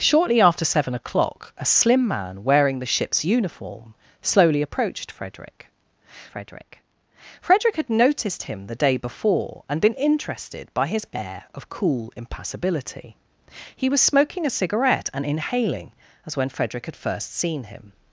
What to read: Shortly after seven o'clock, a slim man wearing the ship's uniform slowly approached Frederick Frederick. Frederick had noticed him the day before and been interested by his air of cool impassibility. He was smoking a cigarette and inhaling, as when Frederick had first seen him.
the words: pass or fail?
pass